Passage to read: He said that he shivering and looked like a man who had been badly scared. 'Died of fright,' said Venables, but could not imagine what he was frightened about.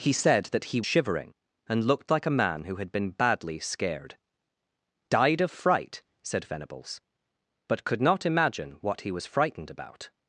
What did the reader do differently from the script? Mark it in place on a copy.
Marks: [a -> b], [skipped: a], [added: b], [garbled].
He said that he shivering and looked like a man who had been badly scared. 'Died of fright,' said Venables, but could not imagine what he was frightened about.